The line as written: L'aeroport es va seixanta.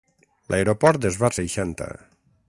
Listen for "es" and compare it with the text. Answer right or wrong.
right